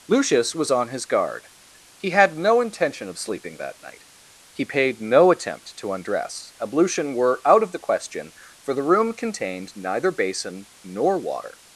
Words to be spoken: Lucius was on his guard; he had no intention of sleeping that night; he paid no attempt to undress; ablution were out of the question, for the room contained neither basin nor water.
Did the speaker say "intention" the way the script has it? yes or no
yes